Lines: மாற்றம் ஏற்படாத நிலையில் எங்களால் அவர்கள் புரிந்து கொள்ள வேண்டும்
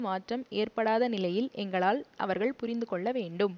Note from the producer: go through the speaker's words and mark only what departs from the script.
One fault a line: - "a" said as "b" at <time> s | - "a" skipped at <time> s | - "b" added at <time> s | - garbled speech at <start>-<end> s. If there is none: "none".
none